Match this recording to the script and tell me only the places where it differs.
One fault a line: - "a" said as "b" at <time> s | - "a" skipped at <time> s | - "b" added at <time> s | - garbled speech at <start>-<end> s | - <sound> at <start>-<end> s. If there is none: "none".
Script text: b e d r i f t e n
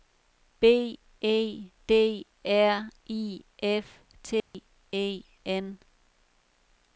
- dropout at 4.4-4.5 s